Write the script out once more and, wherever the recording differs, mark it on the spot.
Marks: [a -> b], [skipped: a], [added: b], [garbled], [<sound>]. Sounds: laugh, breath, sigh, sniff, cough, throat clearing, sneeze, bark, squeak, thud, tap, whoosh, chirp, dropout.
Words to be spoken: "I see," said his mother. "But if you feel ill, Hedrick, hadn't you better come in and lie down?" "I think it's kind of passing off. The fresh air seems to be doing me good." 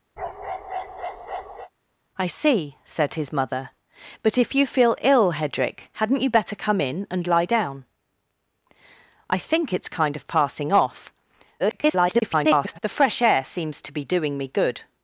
[bark] "I see," said his mother. "But if you feel ill, Hedrick, hadn't you better come in and lie down?" "I think it's kind of passing off. [garbled] The fresh air seems to be doing me good."